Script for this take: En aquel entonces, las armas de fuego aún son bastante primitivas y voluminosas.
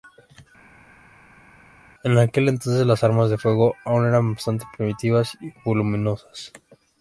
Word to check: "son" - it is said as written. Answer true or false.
false